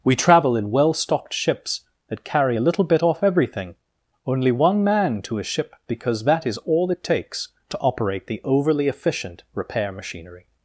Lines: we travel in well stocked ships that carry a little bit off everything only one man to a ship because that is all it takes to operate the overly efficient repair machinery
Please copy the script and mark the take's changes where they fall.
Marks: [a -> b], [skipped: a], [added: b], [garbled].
we travel in well stocked ships that carry a little bit off everything only one man to a ship because that is all it takes to operate the overly efficient repair machinery